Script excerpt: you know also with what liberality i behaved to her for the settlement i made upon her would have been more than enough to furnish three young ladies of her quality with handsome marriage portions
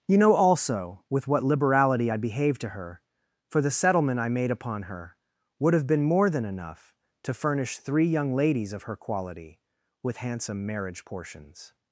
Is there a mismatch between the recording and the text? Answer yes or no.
no